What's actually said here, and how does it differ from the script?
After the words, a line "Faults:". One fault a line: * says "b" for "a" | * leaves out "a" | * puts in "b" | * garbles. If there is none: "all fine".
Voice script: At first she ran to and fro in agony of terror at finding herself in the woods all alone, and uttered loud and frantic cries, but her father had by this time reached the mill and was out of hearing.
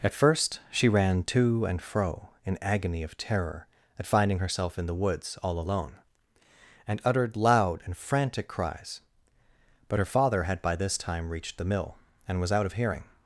At first she ran to and fro in agony of terror at finding herself in the woods all alone, and uttered loud and frantic cries, but her father had by this time reached the mill and was out of hearing.
Faults:
all fine